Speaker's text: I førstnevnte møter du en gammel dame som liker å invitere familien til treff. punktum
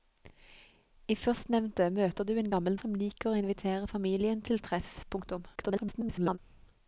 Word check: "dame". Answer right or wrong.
wrong